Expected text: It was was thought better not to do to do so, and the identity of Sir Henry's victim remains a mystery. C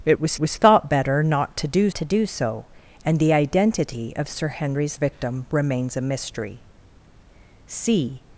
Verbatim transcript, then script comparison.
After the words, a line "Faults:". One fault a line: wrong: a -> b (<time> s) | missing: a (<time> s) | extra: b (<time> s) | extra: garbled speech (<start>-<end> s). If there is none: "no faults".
It was was thought better not to do to do so, and the identity of Sir Henry's victim remains a mystery. C
Faults:
no faults